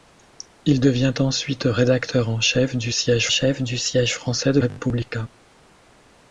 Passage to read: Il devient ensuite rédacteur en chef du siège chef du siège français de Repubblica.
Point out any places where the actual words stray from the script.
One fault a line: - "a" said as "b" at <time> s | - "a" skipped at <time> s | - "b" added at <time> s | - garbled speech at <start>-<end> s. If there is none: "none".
none